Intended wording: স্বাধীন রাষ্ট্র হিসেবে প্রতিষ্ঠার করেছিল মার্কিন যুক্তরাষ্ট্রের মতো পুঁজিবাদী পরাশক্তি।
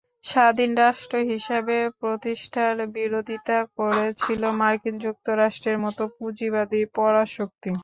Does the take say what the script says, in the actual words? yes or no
no